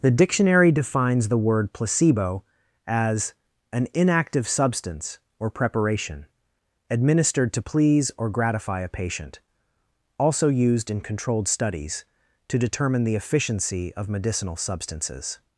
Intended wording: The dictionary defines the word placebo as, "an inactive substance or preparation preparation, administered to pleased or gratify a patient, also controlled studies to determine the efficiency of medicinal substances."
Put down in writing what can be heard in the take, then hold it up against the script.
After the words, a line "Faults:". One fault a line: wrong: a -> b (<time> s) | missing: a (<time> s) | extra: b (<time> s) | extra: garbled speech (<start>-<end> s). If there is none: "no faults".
The dictionary defines the word placebo as, "an inactive substance or preparation, administered to please or gratify a patient, also used in controlled studies to determine the efficiency of medicinal substances."
Faults:
missing: preparation (6.2 s)
wrong: pleased -> please (7.6 s)
extra: used in (10.5 s)